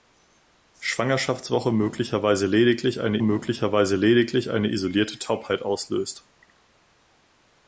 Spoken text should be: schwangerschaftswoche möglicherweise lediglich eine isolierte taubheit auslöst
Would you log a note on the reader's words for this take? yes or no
yes